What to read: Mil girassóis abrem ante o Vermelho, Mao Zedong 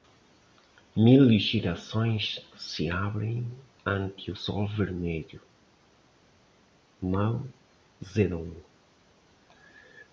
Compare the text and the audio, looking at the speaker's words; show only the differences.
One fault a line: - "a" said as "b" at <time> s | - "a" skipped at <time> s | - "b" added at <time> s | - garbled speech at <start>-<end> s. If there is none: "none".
- "se" added at 2.6 s
- "Sol" added at 4.3 s